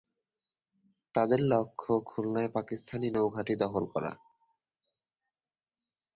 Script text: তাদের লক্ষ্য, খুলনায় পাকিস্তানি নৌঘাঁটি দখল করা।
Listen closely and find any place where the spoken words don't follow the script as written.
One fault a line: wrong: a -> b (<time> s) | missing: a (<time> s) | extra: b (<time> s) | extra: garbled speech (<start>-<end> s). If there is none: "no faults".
no faults